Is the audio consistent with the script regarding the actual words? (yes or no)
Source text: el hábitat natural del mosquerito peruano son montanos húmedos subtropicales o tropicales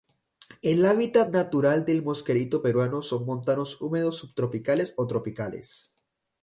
yes